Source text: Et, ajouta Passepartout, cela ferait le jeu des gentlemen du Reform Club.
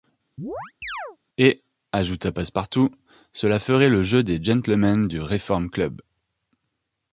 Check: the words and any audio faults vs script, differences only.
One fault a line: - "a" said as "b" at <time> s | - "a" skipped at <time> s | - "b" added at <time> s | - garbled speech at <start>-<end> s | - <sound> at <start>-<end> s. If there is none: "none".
- chirp at 0.4-1.2 s